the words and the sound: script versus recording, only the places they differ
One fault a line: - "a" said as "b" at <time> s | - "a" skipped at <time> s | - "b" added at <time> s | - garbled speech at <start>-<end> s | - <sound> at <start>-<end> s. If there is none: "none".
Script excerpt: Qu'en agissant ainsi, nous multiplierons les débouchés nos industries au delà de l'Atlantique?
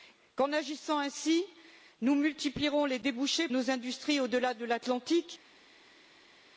none